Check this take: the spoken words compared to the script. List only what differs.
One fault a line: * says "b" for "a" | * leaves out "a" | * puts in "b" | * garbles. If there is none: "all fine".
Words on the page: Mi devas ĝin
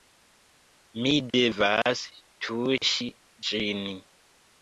* puts in "tuŝi"